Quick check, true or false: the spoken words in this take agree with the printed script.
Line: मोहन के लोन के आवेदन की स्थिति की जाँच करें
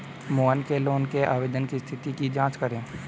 true